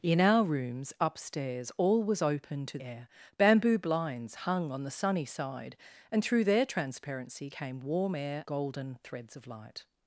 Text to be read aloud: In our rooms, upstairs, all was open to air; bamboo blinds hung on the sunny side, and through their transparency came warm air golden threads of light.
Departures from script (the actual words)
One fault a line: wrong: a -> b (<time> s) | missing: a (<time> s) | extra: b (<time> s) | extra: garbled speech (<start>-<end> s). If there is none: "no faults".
no faults